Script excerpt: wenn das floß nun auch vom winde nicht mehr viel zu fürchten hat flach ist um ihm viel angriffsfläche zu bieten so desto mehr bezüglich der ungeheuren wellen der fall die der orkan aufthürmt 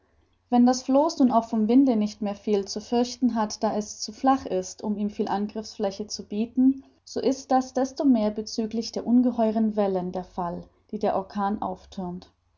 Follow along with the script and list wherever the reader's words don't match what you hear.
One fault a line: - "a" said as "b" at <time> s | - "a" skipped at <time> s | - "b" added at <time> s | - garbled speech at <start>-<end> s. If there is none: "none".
- "da es zu" added at 3.6 s
- "ist das" added at 7.2 s